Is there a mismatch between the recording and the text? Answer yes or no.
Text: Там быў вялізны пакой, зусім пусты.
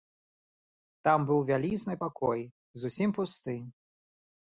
no